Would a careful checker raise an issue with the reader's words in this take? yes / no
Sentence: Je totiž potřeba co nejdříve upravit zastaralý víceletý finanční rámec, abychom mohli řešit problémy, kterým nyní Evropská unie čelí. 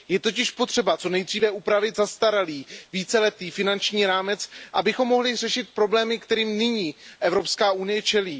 no